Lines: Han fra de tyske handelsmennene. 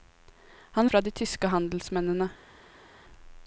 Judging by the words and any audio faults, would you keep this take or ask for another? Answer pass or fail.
pass